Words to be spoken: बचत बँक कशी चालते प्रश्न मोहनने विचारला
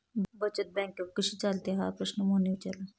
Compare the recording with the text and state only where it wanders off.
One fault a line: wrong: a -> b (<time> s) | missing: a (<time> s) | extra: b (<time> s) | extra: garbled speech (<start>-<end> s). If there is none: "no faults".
extra: हा (1.8 s)